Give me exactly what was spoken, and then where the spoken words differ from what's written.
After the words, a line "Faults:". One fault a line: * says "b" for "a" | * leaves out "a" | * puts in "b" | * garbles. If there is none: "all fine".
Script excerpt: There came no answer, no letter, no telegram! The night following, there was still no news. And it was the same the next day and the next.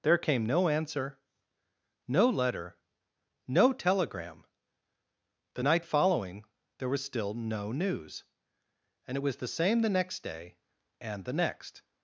There came no answer, no letter, no telegram! The night following, there was still no news. And it was the same the next day and the next.
Faults:
all fine